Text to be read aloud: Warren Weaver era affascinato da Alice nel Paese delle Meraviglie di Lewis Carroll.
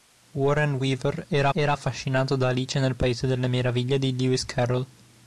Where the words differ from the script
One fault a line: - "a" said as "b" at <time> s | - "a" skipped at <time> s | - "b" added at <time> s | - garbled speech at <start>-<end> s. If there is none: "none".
- "era" added at 1.5 s